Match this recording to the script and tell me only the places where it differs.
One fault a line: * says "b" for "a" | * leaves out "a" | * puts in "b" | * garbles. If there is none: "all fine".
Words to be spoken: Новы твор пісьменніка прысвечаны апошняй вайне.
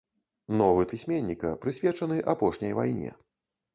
* leaves out "твор"